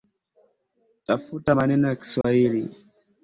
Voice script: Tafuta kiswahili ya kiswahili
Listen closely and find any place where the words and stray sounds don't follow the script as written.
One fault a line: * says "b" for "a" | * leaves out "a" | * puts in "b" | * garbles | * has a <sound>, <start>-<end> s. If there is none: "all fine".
* says "maneno" for "kiswahili"
* has a dropout, 2.2-2.2 s